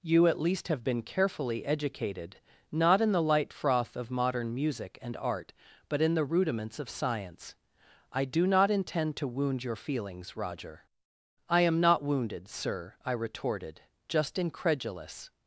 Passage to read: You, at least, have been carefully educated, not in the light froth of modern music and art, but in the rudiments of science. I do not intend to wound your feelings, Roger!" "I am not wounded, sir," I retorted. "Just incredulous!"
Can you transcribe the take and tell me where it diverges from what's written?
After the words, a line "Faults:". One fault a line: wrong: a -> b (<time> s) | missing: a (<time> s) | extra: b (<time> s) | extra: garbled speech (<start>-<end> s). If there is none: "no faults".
You, at least, have been carefully educated, not in the light froth of modern music and art, but in the rudiments of science. I do not intend to wound your feelings, Roger!" "I am not wounded, sir," I retorted. "Just incredulous!"
Faults:
no faults